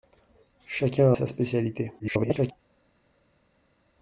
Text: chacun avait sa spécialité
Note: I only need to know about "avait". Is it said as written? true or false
false